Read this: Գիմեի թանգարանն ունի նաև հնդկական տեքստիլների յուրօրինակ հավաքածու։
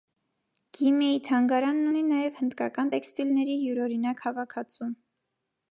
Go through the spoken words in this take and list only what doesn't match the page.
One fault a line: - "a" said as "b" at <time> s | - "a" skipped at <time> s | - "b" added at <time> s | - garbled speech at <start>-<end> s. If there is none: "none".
none